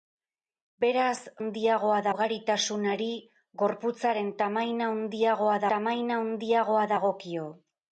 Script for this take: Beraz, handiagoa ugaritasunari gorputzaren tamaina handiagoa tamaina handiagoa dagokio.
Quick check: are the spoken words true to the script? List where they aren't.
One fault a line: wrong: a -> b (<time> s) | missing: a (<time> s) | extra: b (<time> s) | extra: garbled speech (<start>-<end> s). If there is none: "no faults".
no faults